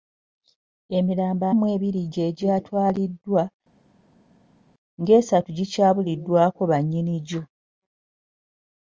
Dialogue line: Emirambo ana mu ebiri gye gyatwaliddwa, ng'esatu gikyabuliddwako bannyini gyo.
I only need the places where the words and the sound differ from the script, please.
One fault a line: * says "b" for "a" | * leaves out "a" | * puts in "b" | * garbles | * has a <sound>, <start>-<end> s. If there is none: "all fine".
* leaves out "ana"